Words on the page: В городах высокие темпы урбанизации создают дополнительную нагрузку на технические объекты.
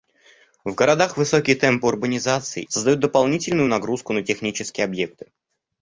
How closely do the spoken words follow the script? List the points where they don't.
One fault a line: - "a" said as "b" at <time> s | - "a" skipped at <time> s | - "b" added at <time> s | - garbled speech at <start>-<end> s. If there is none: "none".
none